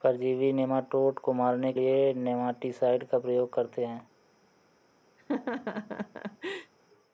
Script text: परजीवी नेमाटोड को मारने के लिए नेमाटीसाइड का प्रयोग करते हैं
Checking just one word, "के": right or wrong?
wrong